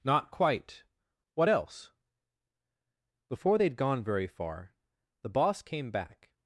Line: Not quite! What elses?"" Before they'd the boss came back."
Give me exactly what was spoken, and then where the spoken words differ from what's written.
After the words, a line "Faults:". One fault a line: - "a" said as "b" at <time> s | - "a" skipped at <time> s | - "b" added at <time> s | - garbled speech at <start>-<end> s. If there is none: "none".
Not quite! What else?"" Before they'd gone very far, the boss came back."
Faults:
- "elses" said as "else" at 1.5 s
- "gone very far" added at 3.8 s